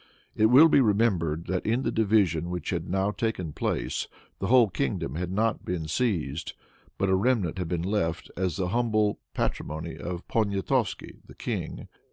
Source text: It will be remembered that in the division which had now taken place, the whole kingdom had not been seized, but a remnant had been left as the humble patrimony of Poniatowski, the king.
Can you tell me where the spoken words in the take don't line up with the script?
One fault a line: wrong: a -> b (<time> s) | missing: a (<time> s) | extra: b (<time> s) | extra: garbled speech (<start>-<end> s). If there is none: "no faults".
no faults